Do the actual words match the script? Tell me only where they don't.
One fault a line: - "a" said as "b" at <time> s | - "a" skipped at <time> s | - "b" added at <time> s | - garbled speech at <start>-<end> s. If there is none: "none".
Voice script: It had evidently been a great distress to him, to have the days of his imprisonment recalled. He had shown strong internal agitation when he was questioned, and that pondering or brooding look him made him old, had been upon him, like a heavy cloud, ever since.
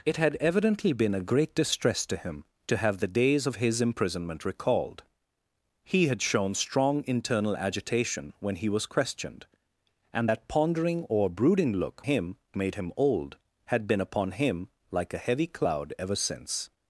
none